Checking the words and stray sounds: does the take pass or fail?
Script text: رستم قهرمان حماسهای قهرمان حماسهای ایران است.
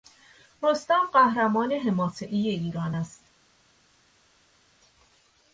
fail